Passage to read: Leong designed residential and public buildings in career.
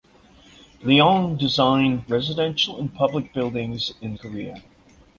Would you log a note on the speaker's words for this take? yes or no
no